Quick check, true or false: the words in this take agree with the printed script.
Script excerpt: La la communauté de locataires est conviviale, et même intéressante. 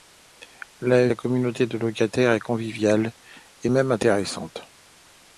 true